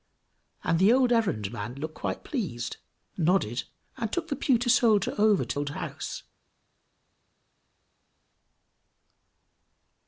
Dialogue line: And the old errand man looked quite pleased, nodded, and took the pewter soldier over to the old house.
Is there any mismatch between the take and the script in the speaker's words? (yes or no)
yes